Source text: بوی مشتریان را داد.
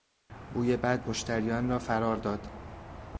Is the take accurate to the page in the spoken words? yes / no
no